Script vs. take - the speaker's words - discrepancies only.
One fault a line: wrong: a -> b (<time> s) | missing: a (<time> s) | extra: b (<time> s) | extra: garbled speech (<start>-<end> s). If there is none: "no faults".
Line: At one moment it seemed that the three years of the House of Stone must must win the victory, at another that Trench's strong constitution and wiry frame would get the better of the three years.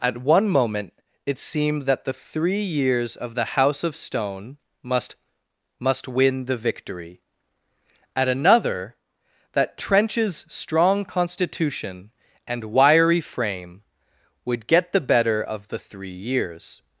no faults